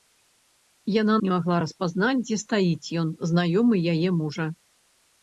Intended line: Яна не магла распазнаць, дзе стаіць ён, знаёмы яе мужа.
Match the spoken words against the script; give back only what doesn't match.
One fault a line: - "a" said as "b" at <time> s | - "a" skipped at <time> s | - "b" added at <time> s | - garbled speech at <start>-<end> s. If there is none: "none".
none